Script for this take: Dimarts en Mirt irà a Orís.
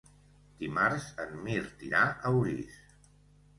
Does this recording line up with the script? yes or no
yes